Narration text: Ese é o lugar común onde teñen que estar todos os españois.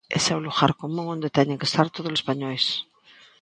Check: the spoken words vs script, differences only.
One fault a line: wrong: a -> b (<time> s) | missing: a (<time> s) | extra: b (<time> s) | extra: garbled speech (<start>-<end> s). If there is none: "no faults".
missing: os (2.1 s)